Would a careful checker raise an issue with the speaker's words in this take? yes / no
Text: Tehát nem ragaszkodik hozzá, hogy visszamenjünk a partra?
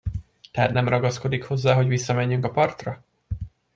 no